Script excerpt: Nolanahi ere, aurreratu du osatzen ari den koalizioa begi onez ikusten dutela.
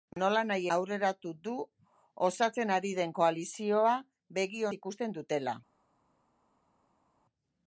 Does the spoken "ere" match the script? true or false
false